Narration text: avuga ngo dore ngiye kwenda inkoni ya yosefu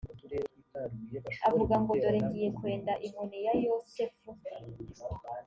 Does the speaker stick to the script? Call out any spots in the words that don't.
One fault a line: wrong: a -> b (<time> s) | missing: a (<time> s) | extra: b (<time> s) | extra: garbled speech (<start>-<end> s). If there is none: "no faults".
no faults